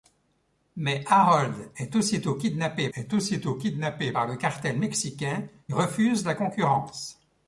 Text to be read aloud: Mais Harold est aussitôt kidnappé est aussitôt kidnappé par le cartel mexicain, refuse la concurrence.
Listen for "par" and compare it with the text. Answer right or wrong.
right